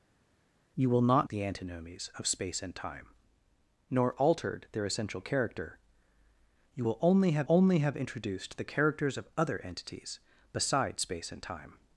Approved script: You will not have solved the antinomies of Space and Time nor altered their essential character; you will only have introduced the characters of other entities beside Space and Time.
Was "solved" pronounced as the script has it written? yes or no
no